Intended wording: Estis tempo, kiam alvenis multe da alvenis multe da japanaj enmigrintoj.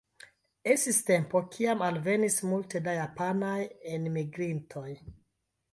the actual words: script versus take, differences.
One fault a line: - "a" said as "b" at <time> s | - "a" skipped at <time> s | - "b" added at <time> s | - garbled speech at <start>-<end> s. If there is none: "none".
- "alvenis multe da" skipped at 3.0 s